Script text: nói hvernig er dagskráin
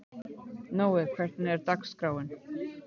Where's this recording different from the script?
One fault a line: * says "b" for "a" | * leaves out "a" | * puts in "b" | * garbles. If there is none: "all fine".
all fine